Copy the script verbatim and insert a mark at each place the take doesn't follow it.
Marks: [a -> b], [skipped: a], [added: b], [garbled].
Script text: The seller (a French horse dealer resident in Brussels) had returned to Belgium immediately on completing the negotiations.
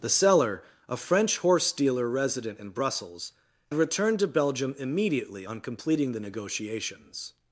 The seller (a French horse dealer resident in Brussels) [skipped: had] returned to Belgium immediately on completing the negotiations.